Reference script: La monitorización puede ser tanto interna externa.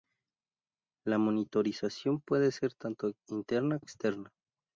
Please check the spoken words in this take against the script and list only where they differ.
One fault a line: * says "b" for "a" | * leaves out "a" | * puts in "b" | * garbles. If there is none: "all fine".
all fine